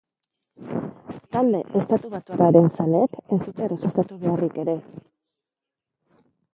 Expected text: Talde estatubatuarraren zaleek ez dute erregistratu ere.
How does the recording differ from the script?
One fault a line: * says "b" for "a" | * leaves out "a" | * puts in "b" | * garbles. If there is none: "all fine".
* puts in "beharrik"